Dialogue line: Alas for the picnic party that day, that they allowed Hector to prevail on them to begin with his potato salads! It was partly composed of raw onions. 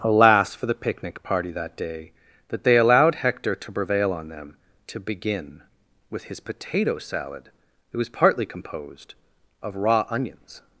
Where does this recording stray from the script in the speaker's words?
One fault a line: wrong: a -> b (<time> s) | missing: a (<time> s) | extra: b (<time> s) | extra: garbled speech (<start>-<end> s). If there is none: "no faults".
wrong: salads -> salad (7.0 s)